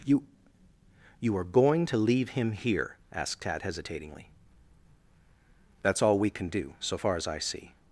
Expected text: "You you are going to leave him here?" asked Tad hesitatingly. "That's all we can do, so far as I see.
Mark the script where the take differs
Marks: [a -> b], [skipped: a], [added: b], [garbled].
"You you are going to leave him here?" asked Tad hesitatingly. "That's all we can do, so far as I see.